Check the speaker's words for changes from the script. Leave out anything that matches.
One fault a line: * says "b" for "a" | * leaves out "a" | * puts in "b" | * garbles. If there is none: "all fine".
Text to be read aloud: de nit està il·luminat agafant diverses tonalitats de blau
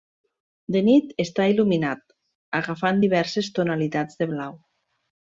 all fine